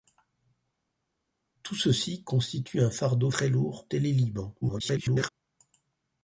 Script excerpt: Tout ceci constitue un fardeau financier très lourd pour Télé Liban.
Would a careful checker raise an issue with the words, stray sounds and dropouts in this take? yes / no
yes